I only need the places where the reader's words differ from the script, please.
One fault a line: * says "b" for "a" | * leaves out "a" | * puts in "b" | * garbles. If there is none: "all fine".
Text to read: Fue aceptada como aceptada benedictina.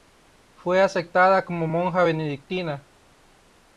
* says "monja" for "aceptada"